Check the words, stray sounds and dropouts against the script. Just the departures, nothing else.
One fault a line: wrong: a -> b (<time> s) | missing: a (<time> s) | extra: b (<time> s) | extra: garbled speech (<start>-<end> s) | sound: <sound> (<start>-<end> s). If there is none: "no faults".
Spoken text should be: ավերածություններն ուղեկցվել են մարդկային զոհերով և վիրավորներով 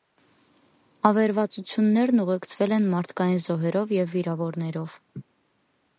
sound: laugh (5.1-5.2 s)